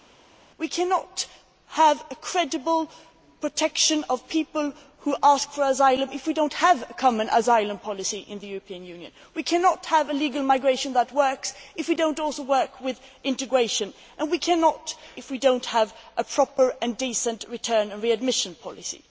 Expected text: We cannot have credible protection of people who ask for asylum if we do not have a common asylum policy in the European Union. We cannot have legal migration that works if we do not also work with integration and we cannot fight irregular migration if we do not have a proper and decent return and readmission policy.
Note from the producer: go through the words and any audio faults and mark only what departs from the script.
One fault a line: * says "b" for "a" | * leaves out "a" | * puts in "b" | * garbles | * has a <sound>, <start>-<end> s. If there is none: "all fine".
* leaves out "fight irregular migration"